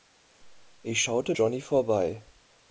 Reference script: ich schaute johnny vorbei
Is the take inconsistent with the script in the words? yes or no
no